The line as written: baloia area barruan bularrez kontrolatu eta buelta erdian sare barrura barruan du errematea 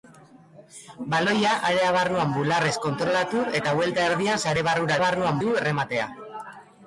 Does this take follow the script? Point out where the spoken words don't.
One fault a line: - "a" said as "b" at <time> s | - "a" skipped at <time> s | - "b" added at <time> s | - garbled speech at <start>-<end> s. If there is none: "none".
none